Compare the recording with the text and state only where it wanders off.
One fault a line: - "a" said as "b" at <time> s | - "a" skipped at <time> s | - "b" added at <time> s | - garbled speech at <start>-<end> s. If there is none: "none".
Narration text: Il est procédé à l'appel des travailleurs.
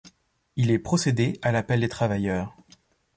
none